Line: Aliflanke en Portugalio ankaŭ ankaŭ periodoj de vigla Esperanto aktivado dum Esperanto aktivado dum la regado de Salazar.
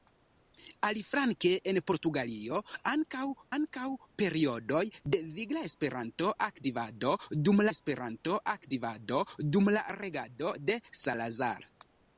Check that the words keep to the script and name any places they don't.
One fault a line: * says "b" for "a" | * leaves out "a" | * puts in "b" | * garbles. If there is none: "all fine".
all fine